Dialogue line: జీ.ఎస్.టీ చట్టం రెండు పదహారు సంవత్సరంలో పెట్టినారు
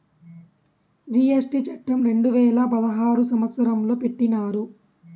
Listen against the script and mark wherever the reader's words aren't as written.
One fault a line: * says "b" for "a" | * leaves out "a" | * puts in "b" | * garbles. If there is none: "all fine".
* puts in "వేల"